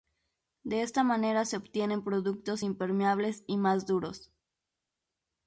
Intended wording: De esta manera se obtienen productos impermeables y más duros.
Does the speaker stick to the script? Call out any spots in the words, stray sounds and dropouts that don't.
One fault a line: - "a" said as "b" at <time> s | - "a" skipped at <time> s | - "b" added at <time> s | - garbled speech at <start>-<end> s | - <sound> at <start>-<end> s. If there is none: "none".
none